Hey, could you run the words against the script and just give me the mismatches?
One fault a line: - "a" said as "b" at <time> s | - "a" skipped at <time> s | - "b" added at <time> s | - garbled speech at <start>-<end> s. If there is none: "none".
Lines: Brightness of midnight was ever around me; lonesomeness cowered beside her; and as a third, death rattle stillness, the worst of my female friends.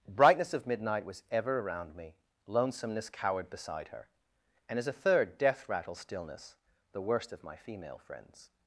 none